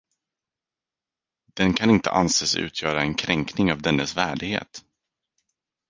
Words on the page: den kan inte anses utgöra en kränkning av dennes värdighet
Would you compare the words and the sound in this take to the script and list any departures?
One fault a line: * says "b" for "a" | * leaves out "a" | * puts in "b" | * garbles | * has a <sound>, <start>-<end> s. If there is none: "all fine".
all fine